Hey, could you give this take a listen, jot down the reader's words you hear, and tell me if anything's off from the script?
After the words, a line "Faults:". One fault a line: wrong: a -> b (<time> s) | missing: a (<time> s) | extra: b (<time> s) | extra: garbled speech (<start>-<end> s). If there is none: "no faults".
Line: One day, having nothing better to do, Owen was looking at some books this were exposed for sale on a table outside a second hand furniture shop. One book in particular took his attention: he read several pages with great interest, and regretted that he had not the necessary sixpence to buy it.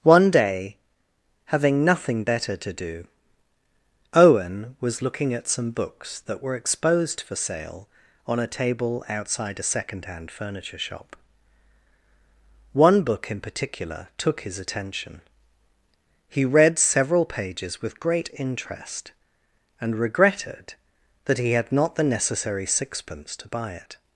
One day, having nothing better to do, Owen was looking at some books that were exposed for sale on a table outside a second hand furniture shop. One book in particular took his attention: he read several pages with great interest, and regretted that he had not the necessary sixpence to buy it.
Faults:
wrong: this -> that (6.2 s)